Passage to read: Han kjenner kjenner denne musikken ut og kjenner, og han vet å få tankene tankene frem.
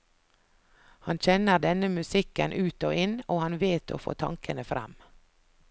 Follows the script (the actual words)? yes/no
no